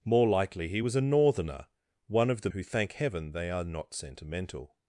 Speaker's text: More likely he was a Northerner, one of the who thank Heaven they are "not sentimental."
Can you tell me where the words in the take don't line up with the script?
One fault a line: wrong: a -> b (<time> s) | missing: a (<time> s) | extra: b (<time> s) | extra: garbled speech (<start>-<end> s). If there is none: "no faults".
no faults